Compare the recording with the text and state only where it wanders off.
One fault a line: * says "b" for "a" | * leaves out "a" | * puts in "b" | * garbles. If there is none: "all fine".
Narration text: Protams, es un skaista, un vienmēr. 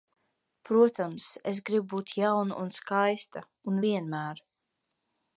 * puts in "gribu būt jauna"